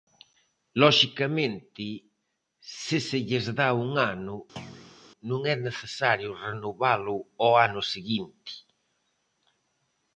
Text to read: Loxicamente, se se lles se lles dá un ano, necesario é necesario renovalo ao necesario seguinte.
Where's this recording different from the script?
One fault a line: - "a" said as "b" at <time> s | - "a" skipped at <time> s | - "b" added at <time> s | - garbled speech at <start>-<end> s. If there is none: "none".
- "se lles" skipped at 3.5 s
- "necesario" said as "non" at 5.3 s
- "necesario" said as "ano" at 7.7 s